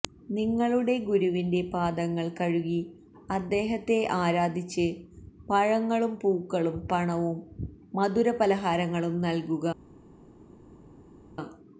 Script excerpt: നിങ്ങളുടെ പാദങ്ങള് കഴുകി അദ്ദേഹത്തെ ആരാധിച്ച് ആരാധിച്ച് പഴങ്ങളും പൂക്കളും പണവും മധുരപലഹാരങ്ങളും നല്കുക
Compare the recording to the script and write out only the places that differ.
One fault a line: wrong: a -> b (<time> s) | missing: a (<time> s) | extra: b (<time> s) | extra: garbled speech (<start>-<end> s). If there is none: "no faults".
extra: ഗുരുവിന്റെ (1.1 s)
missing: ആരാധിച്ച് (4.8 s)